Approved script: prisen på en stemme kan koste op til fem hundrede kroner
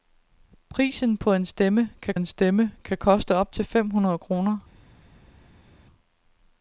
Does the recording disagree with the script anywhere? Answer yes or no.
yes